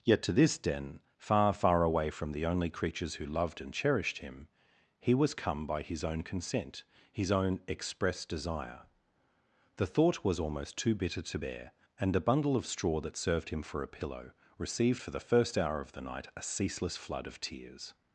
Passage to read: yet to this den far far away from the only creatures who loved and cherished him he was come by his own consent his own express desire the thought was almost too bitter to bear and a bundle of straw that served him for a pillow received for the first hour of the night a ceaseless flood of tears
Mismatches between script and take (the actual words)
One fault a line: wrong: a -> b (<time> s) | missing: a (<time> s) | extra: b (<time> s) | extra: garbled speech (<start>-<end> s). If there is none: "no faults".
no faults